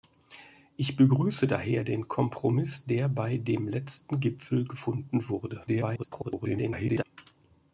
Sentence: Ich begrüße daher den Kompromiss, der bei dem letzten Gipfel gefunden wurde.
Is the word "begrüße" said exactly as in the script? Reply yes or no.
yes